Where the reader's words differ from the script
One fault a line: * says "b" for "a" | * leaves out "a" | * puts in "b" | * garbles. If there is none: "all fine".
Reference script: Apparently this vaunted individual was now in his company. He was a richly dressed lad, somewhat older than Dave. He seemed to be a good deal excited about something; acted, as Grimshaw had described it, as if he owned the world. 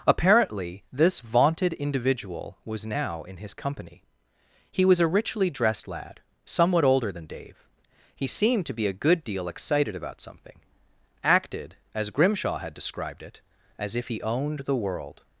all fine